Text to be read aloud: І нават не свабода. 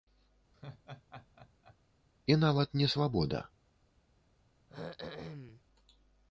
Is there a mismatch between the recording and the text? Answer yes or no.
no